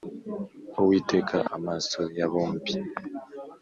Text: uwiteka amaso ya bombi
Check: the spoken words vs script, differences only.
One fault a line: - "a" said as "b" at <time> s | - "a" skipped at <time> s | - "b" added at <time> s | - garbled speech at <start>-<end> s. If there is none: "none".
none